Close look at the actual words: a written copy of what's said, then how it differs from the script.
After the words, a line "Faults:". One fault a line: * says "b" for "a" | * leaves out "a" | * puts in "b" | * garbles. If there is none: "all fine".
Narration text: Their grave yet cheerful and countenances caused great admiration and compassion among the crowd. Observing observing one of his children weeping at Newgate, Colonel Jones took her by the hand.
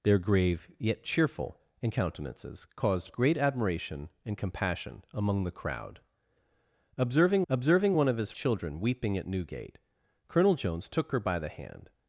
Their grave yet cheerful and countenances caused great admiration and compassion among the crowd. Observing observing one of his children weeping at Newgate, Colonel Jones took her by the hand.
Faults:
all fine